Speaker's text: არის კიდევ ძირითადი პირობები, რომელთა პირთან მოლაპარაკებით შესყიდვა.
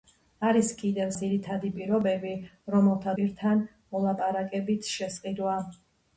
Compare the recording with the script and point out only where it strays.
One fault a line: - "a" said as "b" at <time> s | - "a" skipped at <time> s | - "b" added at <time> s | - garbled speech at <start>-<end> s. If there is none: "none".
none